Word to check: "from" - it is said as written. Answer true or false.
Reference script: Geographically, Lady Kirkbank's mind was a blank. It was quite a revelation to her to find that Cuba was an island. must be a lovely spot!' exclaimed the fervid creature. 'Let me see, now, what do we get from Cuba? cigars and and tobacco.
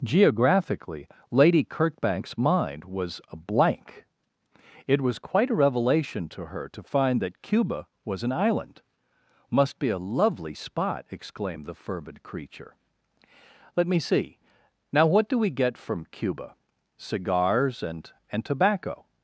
true